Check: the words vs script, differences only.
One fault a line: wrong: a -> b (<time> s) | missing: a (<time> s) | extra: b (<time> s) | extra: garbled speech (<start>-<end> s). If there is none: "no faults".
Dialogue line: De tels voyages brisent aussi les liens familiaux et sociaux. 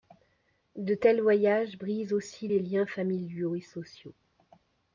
no faults